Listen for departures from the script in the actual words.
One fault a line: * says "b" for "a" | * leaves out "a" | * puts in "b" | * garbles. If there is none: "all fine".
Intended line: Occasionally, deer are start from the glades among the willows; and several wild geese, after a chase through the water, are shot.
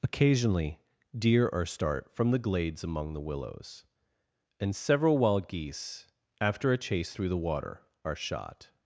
all fine